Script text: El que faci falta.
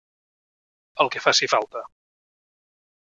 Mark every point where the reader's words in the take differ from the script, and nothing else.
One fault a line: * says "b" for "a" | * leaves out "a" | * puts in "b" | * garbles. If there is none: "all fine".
all fine